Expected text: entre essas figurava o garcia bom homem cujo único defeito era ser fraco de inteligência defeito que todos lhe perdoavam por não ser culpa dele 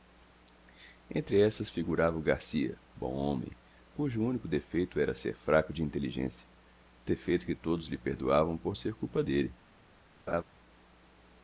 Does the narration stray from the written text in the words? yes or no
yes